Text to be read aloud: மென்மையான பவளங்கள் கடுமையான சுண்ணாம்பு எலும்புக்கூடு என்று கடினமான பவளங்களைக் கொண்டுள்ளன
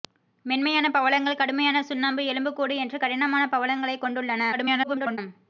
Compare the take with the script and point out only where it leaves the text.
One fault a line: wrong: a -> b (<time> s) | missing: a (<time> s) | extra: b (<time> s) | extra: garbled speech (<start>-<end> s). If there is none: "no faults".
extra: garbled speech (4.5-5.2 s)